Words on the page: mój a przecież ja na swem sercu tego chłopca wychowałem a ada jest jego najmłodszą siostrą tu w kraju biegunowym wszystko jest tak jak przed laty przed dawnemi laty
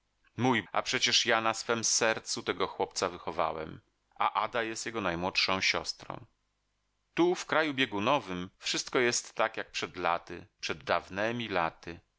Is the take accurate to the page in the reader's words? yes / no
yes